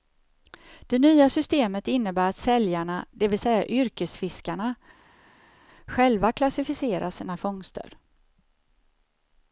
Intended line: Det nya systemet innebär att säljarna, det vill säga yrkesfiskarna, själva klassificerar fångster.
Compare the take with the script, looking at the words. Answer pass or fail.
fail